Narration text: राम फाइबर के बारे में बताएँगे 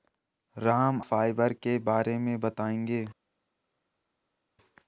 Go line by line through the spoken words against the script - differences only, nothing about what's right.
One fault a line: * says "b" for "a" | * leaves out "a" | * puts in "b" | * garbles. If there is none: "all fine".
all fine